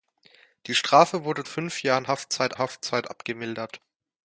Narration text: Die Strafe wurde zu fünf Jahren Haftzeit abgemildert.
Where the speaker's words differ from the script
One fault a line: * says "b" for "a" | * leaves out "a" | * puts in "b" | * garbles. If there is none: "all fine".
* leaves out "zu"
* puts in "Haftzeit"